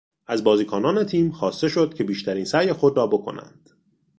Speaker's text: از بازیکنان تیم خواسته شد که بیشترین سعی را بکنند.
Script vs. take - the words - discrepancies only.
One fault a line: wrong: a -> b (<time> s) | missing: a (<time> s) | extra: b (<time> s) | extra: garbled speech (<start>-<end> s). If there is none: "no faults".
extra: خود (2.7 s)